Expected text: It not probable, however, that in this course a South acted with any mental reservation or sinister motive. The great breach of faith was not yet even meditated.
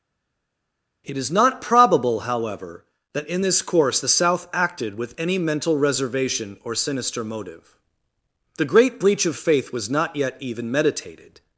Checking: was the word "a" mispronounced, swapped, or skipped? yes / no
yes